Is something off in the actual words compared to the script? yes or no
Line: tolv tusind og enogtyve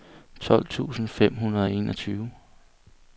yes